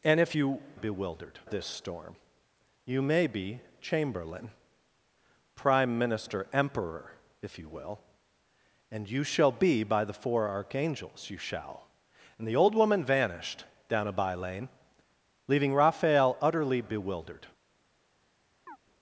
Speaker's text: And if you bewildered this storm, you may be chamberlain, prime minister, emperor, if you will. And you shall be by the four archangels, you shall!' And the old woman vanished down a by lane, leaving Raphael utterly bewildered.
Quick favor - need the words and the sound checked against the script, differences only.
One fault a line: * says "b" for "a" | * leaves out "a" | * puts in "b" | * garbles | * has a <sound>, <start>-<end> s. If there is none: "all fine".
* has a chirp, 18.7-18.8 s